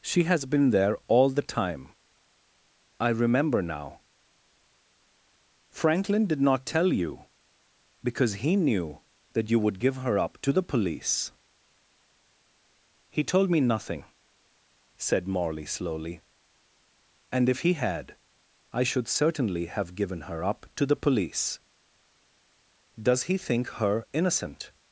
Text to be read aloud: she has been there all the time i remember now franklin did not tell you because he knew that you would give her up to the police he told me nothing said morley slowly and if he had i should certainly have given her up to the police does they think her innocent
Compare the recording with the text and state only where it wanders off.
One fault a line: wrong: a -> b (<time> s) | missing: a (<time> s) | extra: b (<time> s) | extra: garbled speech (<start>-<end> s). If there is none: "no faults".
wrong: they -> he (23.2 s)